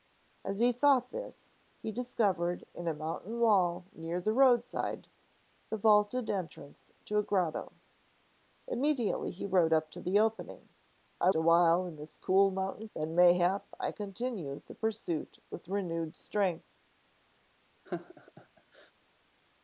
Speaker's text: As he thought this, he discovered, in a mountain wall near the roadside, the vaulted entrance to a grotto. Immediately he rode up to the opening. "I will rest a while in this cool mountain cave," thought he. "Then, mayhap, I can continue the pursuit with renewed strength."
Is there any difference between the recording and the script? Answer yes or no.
yes